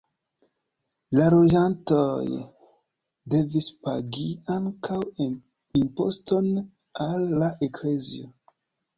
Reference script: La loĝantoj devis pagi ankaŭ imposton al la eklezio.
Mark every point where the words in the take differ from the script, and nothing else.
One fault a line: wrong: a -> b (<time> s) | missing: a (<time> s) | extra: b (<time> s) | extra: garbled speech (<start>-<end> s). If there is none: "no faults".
no faults